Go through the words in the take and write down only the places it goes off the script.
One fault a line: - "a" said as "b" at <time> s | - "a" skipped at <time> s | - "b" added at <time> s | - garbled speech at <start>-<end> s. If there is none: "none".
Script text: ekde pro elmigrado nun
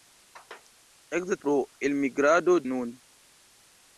none